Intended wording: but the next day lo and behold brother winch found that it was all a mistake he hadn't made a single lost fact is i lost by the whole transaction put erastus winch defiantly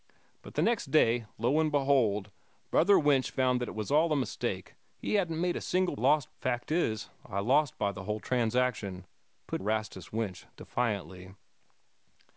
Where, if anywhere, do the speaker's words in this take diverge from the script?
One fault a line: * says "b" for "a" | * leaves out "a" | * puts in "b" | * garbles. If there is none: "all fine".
all fine